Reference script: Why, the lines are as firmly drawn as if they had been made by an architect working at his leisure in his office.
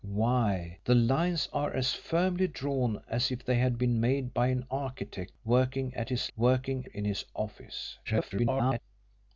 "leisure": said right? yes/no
no